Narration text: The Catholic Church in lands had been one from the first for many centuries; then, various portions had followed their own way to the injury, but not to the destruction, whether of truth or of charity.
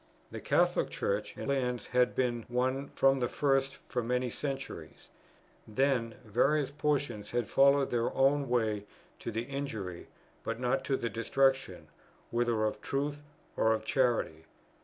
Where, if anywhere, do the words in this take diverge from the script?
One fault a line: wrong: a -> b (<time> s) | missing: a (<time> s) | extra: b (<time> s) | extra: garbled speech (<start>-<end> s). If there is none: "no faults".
no faults